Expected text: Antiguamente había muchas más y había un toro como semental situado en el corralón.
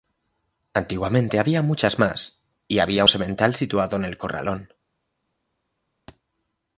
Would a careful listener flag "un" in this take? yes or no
yes